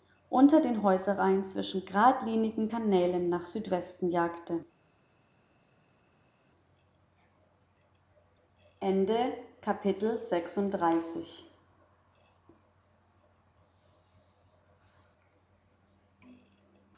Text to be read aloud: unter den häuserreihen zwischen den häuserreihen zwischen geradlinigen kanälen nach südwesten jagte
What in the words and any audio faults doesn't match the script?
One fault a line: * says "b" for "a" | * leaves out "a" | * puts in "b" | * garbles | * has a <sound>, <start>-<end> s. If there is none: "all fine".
* leaves out "den häuserreihen zwischen"